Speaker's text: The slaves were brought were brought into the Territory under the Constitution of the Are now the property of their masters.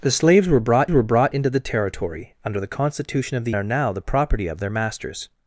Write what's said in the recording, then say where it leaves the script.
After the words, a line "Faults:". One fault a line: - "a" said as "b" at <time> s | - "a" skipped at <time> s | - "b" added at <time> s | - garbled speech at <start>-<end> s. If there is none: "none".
The slaves were brought were brought into the Territory under the Constitution of the Are now the property of their masters.
Faults:
none